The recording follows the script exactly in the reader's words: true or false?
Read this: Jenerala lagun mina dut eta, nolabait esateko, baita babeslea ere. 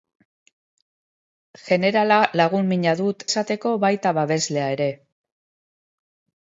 false